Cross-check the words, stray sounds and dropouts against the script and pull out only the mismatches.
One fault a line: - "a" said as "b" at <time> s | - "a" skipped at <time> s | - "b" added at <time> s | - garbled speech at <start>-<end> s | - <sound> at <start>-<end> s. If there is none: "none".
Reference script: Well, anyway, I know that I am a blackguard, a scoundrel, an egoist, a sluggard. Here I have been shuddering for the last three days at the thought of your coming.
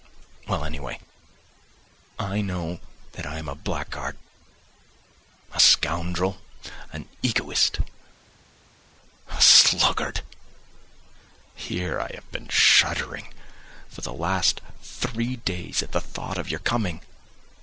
none